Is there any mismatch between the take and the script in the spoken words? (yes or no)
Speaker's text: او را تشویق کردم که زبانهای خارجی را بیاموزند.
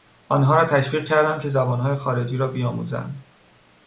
yes